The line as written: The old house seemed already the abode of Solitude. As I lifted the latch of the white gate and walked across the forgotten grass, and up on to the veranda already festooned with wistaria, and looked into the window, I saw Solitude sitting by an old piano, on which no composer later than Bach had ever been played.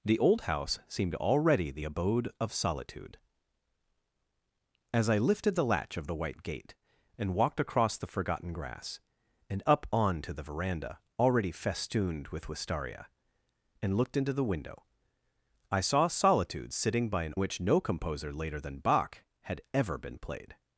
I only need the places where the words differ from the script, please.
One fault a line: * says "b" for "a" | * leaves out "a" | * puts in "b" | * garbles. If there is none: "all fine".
* leaves out "old piano on"